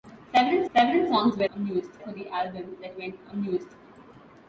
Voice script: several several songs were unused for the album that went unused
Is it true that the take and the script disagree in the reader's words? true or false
false